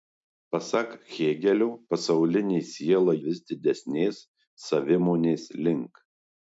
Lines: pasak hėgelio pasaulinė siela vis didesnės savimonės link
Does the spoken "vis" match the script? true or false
true